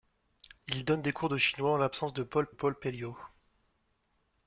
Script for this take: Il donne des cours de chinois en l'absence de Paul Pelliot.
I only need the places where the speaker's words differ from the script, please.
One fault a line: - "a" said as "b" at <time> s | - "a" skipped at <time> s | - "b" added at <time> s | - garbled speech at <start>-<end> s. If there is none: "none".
- "Paul" added at 2.5 s